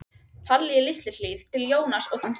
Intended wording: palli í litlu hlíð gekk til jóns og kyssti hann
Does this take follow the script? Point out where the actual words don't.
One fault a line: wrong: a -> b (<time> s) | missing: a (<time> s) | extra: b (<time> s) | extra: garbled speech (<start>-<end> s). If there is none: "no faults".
missing: gekk (1.4 s)
missing: kyssti (2.2 s)